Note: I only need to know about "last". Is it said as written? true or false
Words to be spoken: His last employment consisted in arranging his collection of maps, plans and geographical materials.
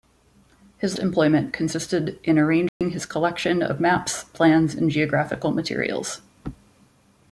false